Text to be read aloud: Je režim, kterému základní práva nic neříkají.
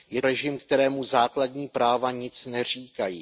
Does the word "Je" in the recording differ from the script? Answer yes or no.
no